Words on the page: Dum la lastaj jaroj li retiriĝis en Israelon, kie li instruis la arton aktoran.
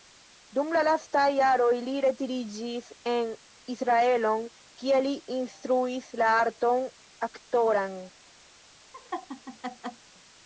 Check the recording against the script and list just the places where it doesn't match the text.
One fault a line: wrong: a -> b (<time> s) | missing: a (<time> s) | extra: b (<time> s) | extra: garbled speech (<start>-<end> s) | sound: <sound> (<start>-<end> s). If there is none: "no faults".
sound: laugh (8.9-10.1 s)